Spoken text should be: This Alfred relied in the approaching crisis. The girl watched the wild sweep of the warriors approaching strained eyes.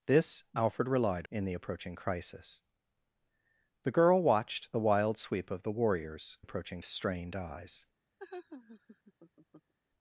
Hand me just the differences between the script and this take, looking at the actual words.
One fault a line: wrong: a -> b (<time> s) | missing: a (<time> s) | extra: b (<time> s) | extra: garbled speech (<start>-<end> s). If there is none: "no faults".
no faults